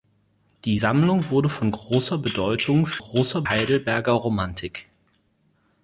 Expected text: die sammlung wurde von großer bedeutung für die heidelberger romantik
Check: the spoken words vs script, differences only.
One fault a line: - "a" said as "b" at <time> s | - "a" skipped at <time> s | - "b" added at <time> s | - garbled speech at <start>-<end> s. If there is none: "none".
- "die" said as "großer" at 3.0 s